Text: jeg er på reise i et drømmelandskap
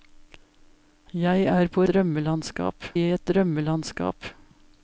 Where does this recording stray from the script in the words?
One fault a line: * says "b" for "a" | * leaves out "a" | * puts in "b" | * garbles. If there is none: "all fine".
* says "drømmelandskap" for "reise"